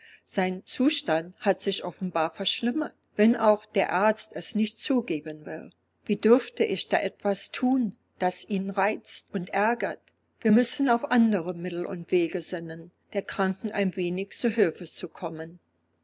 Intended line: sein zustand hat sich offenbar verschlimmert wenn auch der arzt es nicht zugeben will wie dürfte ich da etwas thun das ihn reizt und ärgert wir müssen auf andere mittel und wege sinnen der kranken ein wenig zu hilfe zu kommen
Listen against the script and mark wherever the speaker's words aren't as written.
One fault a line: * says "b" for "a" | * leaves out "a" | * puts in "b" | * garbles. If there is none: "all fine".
all fine